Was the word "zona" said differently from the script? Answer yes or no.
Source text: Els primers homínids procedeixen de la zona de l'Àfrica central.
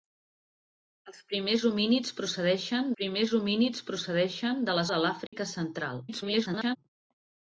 yes